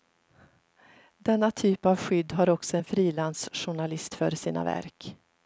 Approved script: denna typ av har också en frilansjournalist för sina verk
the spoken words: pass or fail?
fail